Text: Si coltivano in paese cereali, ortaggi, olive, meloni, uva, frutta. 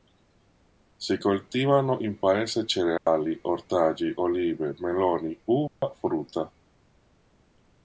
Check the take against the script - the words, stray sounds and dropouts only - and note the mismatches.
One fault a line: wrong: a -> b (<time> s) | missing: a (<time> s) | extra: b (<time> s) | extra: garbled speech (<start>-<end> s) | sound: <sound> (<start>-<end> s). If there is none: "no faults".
sound: dropout (3.0-3.1 s)
sound: dropout (5.7-5.8 s)